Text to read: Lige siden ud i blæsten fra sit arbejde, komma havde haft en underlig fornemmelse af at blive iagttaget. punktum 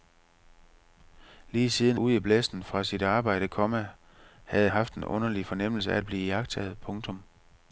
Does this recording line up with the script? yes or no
yes